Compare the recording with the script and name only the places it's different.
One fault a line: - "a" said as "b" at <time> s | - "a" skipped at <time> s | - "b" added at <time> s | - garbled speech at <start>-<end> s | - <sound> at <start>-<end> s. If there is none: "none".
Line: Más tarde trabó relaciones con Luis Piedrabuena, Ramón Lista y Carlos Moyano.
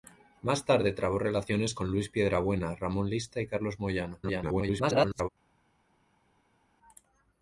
- garbled speech at 4.2-5.3 s